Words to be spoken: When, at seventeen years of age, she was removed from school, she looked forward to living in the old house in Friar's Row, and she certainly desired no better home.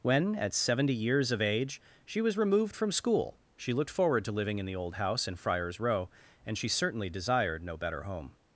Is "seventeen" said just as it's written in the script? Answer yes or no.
no